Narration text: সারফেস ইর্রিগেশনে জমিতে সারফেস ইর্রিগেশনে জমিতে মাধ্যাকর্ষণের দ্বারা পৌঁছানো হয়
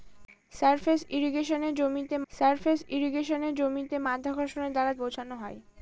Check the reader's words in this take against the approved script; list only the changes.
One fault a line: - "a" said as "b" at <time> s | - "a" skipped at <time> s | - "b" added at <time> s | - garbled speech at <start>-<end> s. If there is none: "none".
none